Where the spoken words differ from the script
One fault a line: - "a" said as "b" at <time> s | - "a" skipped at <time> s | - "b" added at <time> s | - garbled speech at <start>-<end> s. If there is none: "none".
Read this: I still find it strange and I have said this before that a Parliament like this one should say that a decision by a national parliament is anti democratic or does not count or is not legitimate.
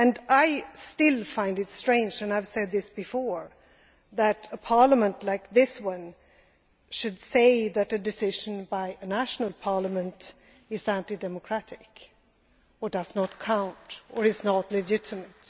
none